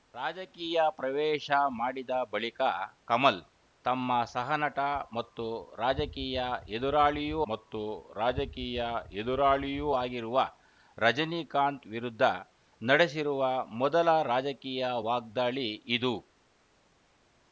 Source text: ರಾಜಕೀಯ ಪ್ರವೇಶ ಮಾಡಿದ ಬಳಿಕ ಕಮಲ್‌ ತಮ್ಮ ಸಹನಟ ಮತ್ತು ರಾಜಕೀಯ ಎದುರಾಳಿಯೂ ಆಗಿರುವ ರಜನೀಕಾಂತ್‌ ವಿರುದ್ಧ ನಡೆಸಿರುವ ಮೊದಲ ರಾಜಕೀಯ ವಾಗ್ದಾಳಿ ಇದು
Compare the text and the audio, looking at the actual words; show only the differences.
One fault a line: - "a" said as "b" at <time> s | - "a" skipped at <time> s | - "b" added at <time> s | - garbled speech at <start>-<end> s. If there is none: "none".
- "ಮತ್ತು ರಾಜಕೀಯ ಎದುರಾಳಿಯೂ" added at 7.5 s